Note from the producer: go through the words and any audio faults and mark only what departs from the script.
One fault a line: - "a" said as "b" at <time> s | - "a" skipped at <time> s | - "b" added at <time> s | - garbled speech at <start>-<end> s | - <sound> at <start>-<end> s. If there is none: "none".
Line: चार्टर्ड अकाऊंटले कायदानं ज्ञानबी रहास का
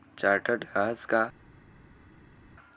- "अकाऊंटले कायदानं ज्ञानबी" skipped at 0.6 s